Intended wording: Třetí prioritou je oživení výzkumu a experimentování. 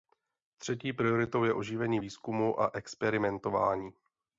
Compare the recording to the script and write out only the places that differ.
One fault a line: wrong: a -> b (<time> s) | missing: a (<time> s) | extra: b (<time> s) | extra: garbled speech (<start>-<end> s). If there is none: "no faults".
no faults